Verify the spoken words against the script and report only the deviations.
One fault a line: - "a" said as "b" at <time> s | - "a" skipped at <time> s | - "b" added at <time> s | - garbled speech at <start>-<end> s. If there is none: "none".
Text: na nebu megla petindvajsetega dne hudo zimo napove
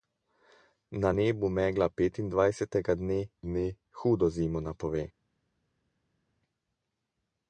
- "dne" added at 3.4 s